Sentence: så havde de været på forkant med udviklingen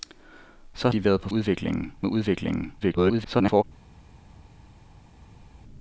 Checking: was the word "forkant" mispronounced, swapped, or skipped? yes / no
yes